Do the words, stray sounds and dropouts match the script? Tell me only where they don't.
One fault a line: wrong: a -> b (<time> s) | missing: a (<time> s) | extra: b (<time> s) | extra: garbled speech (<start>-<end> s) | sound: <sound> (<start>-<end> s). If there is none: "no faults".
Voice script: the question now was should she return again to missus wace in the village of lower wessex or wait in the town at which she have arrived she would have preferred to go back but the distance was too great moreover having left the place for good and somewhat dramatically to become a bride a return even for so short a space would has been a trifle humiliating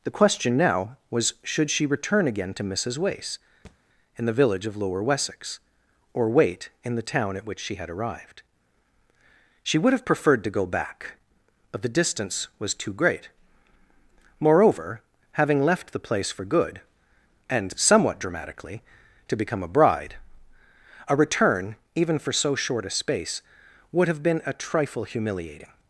sound: thud (3.6-3.8 s)
wrong: have -> had (7.8 s)
wrong: has -> have (24.1 s)